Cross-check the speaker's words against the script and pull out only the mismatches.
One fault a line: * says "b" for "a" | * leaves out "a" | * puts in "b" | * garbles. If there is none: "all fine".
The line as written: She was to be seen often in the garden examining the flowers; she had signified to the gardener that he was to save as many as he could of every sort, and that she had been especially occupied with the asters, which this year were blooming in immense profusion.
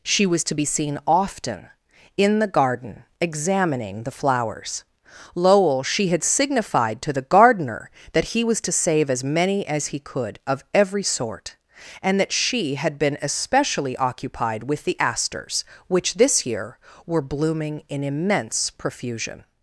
* puts in "lowell"